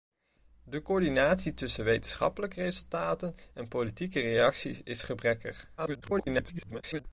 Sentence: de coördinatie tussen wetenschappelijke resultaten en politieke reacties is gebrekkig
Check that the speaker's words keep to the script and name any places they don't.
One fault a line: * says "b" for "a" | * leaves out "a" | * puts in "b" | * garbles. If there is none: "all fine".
* garbles